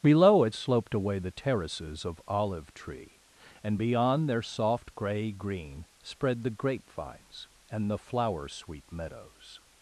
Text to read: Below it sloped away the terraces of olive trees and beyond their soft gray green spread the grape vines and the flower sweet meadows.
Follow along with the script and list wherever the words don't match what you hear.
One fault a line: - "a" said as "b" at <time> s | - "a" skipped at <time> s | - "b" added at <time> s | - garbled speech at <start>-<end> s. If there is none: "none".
- "trees" said as "tree" at 2.7 s